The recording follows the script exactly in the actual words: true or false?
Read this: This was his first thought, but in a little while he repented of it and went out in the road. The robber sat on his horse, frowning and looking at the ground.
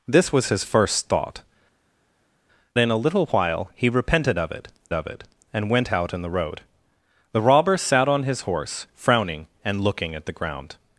false